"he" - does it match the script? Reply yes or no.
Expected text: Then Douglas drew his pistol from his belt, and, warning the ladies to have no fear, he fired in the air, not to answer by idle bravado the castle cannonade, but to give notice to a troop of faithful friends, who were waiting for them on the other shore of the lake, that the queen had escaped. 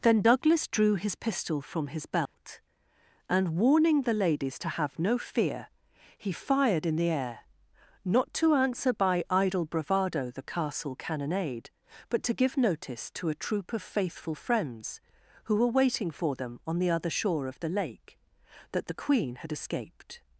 yes